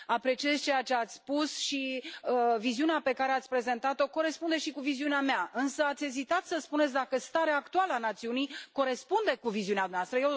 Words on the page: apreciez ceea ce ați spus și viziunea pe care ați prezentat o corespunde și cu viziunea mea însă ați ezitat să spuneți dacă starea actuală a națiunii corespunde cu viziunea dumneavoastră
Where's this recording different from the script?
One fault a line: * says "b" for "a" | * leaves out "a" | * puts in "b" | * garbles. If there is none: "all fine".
all fine